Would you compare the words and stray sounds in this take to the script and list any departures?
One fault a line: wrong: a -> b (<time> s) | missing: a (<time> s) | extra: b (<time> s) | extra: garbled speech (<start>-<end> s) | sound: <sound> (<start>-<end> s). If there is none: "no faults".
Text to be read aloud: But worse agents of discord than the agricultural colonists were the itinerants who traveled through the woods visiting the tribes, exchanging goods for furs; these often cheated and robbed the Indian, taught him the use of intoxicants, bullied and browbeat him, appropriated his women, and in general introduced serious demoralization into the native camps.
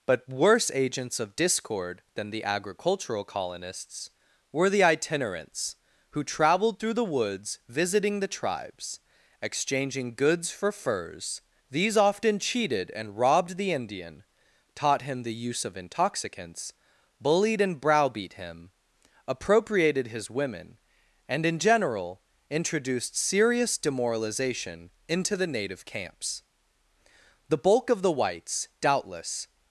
extra: The bulk of the whites doubtless (27.5 s)